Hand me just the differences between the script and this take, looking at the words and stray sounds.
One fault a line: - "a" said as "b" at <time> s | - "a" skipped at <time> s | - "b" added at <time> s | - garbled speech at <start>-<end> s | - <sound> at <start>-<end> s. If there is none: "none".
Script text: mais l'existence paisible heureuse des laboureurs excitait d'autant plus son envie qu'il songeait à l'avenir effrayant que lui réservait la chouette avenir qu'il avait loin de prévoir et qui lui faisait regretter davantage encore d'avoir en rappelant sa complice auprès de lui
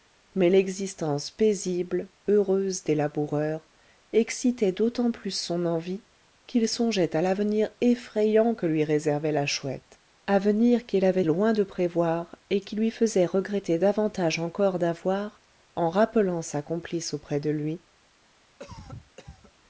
- cough at 18.6-19.5 s